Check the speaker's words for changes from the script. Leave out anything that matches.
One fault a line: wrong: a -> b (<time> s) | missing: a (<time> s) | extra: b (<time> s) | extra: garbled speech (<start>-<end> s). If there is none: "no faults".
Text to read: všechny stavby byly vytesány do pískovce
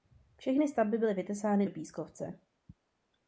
no faults